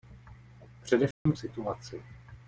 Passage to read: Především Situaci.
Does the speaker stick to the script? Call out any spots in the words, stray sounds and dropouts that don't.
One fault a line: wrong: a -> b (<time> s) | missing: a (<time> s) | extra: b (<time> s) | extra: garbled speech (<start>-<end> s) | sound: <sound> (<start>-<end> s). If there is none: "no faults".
sound: dropout (1.1-1.3 s)